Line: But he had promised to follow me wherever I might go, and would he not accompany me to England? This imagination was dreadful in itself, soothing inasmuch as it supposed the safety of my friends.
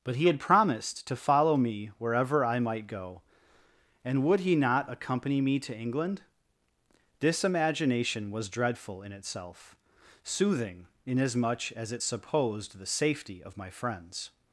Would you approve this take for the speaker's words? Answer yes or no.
yes